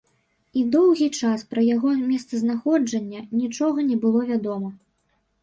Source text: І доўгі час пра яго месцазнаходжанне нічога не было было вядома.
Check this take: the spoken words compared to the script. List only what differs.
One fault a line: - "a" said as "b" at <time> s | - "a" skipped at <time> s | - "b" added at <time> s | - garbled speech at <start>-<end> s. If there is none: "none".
- "было" skipped at 4.3 s